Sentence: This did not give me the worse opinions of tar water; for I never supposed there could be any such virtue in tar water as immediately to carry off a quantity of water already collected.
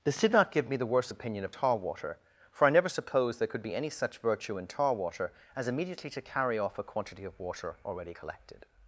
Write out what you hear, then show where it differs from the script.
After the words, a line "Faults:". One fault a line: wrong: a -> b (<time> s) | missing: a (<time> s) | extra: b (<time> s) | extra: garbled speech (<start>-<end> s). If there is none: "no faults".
This did not give me the worse opinion of tar water; for I never supposed there could be any such virtue in tar water as immediately to carry off a quantity of water already collected.
Faults:
wrong: opinions -> opinion (1.1 s)